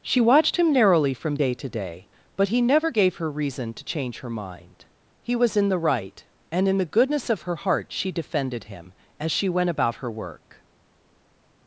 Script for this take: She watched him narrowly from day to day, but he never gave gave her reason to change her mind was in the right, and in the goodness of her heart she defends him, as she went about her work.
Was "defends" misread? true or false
true